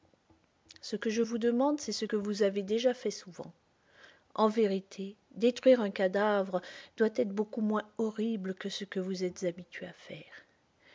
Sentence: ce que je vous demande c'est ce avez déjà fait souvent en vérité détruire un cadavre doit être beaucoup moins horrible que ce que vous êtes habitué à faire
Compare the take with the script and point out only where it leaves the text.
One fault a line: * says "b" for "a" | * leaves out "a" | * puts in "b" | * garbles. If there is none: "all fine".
* puts in "que vous"